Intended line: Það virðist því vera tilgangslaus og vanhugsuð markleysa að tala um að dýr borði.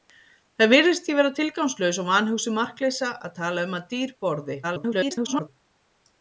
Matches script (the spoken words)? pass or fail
fail